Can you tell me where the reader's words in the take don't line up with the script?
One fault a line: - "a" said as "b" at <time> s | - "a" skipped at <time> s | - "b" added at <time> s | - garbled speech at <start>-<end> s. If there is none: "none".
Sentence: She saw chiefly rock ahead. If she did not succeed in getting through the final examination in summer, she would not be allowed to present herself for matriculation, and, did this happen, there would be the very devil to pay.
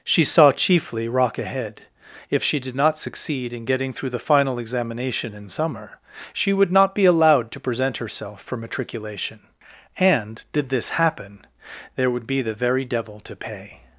none